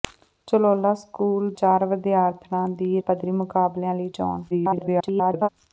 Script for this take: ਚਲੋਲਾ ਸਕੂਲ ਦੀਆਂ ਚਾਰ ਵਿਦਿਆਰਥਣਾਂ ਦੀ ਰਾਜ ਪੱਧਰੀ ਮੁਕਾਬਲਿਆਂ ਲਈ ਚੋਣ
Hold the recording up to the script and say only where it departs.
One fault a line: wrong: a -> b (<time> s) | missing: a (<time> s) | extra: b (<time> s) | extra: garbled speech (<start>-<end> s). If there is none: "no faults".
missing: ਦੀਆਂ (1.5 s)
missing: ਰਾਜ (3.0 s)
extra: garbled speech (4.5-5.5 s)